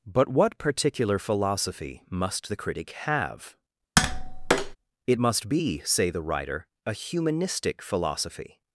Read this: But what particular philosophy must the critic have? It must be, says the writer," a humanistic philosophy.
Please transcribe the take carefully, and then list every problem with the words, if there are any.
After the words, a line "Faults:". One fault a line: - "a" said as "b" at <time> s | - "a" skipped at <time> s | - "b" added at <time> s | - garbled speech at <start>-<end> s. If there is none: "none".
But what particular philosophy must the critic have? It must be, say the writer," a humanistic philosophy.
Faults:
- "says" said as "say" at 5.8 s